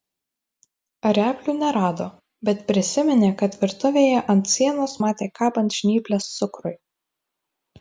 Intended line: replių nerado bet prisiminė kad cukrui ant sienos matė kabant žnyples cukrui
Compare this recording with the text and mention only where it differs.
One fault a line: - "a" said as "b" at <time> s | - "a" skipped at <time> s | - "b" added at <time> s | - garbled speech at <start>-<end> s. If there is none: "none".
- "cukrui" said as "virtuvėje" at 3.6 s